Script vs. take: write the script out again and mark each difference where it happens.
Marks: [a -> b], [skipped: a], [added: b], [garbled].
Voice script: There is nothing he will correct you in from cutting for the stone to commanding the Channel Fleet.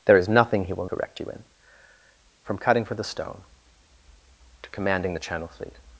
There is nothing he will correct you in from cutting for the stone to commanding the Channel Fleet.